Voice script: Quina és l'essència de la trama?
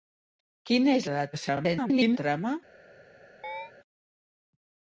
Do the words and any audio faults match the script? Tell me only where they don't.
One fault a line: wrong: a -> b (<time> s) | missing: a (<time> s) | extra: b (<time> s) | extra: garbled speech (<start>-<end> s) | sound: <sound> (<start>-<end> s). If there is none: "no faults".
missing: l'essència (1.1 s)
extra: garbled speech (1.3-2.2 s)
sound: chirp (3.4-3.7 s)